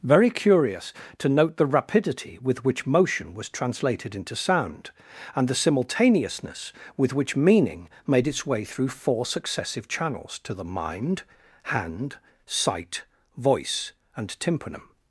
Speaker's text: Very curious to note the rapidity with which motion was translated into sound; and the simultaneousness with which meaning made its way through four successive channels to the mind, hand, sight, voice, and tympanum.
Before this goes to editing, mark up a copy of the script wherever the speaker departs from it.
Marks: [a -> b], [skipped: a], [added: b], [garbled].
Very curious to note the rapidity with which motion was translated into sound; and the simultaneousness with which meaning made its way through four successive channels to the mind, hand, sight, voice, and tympanum.